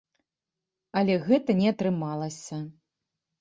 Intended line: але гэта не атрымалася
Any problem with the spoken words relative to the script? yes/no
no